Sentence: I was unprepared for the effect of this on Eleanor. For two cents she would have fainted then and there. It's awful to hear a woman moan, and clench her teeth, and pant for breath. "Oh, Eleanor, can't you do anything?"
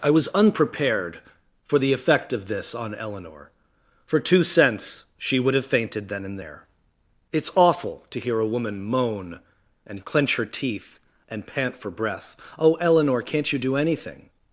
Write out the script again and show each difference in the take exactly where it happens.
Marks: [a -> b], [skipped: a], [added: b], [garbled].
I was unprepared for the effect of this on Eleanor. For two cents she would have fainted then and there. It's awful to hear a woman moan, and clench her teeth, and pant for breath. "Oh, Eleanor, can't you do anything?"